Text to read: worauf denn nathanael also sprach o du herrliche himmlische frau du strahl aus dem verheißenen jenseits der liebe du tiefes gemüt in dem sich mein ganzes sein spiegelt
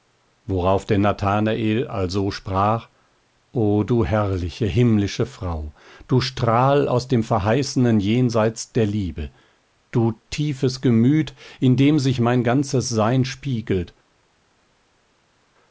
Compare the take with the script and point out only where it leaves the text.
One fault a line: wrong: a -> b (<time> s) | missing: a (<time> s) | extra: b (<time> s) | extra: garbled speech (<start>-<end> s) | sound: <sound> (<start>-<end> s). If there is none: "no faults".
no faults